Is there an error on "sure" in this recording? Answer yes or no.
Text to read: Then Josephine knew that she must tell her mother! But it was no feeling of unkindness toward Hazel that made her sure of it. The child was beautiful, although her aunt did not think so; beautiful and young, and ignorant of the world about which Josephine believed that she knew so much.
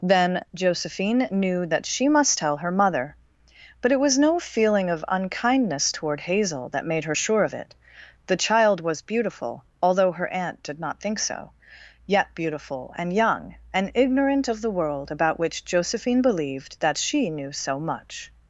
no